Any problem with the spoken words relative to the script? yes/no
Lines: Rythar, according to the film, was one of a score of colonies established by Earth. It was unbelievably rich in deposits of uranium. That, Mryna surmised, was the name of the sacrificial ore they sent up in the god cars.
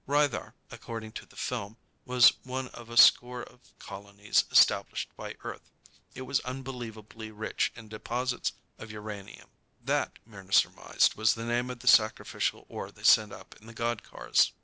no